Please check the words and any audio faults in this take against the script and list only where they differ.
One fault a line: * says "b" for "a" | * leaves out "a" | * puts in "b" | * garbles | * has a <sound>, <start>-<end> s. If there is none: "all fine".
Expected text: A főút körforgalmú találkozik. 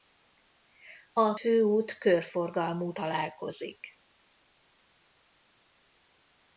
all fine